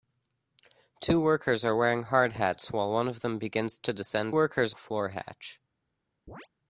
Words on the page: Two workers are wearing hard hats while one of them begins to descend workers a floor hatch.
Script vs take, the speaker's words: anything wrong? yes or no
no